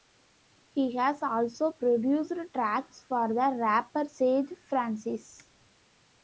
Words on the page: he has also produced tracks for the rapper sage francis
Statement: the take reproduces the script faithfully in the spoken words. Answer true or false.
true